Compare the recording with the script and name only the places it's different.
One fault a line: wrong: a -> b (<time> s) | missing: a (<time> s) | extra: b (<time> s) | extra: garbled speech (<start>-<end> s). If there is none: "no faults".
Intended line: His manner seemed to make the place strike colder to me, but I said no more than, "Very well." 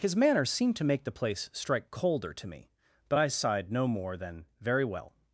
wrong: said -> sighed (3.3 s)